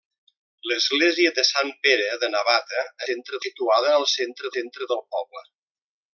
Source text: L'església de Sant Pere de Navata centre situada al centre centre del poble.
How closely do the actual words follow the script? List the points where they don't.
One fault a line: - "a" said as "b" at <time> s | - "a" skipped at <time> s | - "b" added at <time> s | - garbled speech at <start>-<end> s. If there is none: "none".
none